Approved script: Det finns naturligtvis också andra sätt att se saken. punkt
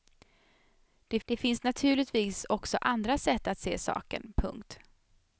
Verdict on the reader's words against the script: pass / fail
fail